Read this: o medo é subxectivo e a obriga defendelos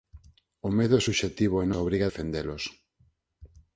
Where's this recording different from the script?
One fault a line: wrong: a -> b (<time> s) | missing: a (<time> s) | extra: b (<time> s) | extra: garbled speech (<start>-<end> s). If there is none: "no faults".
no faults